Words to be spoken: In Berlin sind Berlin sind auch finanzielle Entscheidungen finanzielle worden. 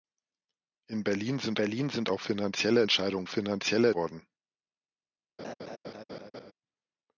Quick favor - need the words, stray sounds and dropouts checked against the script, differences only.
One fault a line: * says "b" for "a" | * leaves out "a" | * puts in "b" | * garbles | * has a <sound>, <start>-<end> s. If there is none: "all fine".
* has a laugh, 5.4-6.5 s